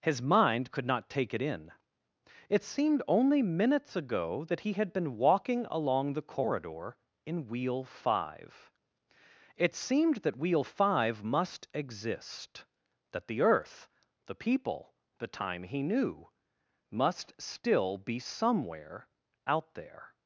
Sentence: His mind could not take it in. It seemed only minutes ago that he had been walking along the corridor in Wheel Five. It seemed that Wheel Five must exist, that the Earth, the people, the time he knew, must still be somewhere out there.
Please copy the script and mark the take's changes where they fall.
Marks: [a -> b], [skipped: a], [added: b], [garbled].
His mind could not take it in. It seemed only minutes ago that he had been walking along the corridor in Wheel Five. It seemed that Wheel Five must exist, that the Earth, the people, the time he knew, must still be somewhere out there.